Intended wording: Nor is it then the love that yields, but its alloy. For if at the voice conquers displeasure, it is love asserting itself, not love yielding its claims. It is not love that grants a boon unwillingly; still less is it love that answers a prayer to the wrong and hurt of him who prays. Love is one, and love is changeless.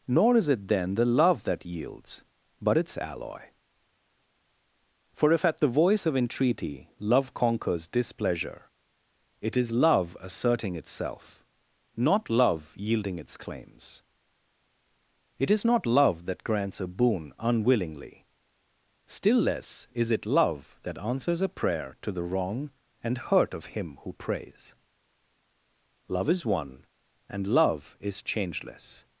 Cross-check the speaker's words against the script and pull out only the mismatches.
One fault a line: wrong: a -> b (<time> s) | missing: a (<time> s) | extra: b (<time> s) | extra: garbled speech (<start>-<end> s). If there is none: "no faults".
extra: of entreaty love (6.0 s)